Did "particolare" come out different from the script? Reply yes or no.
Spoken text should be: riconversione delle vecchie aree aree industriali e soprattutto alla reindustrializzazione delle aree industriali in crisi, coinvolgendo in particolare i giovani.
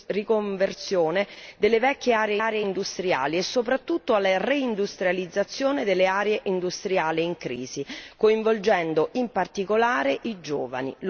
no